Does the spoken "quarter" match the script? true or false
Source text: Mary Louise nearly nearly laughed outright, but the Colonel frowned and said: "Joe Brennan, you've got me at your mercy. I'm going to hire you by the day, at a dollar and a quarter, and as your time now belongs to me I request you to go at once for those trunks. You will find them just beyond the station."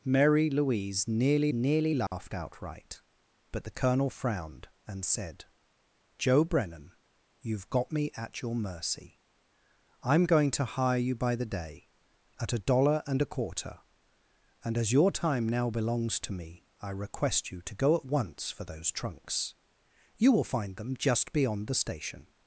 true